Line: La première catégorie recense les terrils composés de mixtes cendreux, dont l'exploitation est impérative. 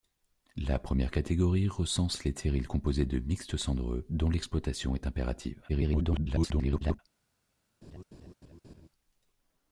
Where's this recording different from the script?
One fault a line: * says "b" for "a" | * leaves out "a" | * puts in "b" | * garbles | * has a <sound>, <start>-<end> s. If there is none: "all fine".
* garbles
* has a laugh, 7.8-8.9 s